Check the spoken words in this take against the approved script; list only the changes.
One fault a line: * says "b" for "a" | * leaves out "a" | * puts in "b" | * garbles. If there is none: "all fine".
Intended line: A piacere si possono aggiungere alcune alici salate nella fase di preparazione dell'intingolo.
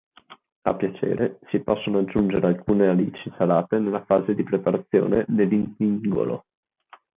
all fine